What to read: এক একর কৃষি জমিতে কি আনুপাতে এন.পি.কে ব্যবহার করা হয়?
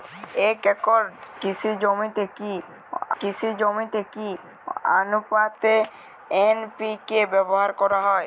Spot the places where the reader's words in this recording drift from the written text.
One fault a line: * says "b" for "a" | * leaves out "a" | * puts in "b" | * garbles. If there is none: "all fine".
* puts in "কৃষি জমিতে কি"